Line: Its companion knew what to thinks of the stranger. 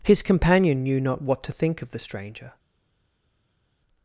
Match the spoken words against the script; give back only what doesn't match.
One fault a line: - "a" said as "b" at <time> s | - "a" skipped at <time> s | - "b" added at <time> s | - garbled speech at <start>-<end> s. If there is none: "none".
- "Its" said as "His" at 0.0 s
- "not" added at 1.0 s
- "thinks" said as "think" at 1.5 s